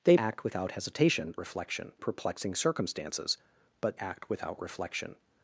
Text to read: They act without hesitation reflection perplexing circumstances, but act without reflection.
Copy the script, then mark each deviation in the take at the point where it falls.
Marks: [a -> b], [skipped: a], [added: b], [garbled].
They act without hesitation reflection perplexing circumstances, but act without reflection.